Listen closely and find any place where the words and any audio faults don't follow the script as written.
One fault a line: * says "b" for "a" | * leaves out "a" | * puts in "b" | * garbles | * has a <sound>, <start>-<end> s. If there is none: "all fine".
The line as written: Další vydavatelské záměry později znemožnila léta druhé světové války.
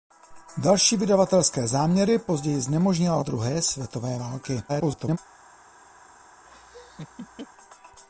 * leaves out "léta"
* garbles
* has a laugh, 6.4-7.5 s